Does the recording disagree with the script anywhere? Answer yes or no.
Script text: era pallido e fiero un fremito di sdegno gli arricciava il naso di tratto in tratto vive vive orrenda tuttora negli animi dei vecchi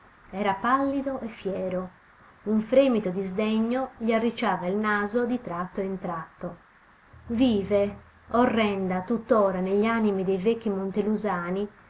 yes